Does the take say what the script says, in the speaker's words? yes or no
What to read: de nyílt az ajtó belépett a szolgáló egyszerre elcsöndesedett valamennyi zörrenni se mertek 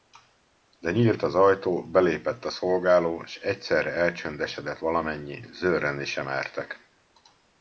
no